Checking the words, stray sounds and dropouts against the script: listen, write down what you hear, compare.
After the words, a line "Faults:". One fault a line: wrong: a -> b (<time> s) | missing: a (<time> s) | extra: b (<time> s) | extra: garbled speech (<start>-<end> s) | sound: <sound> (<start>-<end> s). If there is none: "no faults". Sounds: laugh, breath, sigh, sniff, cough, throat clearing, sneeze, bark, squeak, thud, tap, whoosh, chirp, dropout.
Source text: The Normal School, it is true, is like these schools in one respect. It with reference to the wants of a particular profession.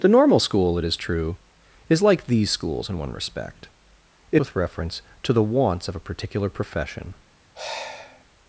The Normal School, it is true, is like these schools in one respect. It with reference to the wants of a particular profession.
Faults:
sound: sigh (7.5-8.2 s)